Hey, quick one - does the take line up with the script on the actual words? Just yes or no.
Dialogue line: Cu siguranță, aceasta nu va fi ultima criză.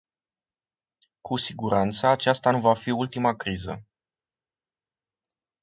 yes